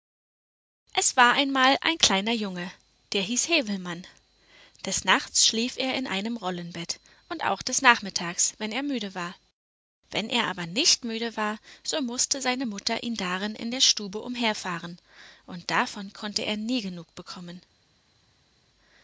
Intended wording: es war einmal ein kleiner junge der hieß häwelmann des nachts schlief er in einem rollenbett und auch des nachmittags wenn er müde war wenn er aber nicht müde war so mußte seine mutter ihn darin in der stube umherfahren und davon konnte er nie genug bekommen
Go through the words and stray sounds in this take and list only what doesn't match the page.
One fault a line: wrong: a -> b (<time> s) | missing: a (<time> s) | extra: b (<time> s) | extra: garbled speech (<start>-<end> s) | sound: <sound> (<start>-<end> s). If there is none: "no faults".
no faults